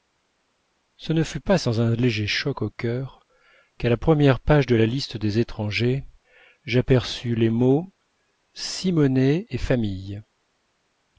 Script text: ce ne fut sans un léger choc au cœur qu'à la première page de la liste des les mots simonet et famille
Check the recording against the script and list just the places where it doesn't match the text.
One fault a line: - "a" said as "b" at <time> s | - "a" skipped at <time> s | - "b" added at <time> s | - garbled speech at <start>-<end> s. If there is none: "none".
- "pas" added at 1.4 s
- "étrangers j'aperçus" added at 5.4 s